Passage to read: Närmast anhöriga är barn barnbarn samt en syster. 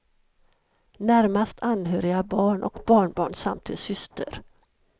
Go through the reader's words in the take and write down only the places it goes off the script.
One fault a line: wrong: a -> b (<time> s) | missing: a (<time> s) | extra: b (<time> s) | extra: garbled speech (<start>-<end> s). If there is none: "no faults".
extra: och (2.6 s)